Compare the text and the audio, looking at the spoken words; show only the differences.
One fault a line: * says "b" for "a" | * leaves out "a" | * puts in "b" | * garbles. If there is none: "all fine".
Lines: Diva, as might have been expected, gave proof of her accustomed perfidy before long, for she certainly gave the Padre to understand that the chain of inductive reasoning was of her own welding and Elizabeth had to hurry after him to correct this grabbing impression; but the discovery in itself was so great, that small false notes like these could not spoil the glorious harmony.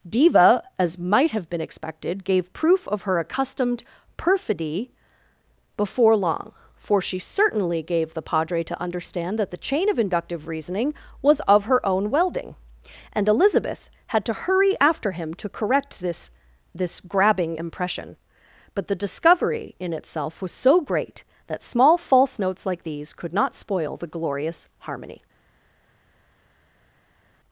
* puts in "this"